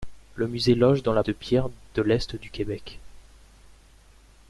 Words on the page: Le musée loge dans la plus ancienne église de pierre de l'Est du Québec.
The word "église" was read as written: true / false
false